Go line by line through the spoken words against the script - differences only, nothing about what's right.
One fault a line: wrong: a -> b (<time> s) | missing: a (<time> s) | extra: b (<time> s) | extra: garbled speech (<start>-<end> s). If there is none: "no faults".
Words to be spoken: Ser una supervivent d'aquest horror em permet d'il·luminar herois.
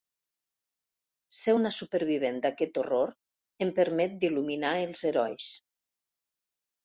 extra: els (4.8 s)